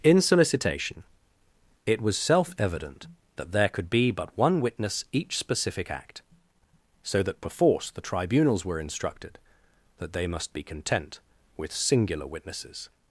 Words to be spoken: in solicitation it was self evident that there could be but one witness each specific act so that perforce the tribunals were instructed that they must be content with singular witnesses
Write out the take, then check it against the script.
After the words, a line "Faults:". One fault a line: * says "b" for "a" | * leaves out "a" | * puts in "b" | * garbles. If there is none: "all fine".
in solicitation it was self evident that there could be but one witness each specific act so that perforce the tribunals were instructed that they must be content with singular witnesses
Faults:
all fine